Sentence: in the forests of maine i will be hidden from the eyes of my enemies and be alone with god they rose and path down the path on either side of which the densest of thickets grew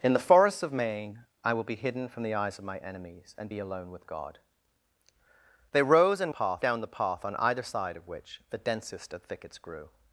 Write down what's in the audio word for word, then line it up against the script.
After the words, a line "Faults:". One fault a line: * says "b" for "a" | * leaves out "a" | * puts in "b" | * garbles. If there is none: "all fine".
in the forests of maine i will be hidden from the eyes of my enemies and be alone with god they rose and path down the path on either side of which the densest of thickets grew
Faults:
all fine